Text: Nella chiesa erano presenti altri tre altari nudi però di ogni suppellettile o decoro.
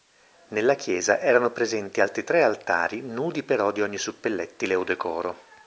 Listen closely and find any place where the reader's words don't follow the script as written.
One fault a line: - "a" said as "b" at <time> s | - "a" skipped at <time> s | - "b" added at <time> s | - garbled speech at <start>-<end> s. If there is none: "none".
none